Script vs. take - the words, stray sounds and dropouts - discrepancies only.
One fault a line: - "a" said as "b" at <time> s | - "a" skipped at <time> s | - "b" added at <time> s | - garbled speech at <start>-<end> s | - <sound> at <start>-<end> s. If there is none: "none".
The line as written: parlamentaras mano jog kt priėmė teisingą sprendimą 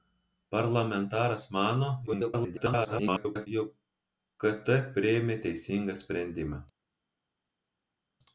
- garbled speech at 2.1-3.5 s